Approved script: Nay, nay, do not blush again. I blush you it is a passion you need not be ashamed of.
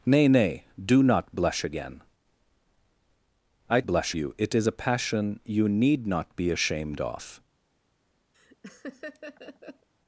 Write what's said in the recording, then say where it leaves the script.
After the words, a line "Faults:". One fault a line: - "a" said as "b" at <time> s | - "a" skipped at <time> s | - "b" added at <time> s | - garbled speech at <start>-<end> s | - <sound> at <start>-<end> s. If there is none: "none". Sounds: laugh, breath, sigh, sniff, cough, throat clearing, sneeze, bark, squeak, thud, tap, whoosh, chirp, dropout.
Nay, nay, do not blush again. I blush you it is a passion you need not be ashamed of.
Faults:
- laugh at 8.3-9.9 s